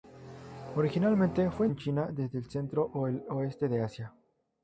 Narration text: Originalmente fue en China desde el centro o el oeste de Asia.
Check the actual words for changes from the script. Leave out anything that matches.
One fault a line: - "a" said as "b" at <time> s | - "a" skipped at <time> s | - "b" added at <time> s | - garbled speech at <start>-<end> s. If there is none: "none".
none